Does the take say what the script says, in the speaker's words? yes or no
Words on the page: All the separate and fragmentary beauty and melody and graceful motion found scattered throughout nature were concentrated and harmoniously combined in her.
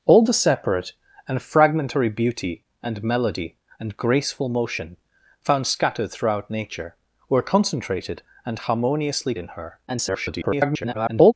no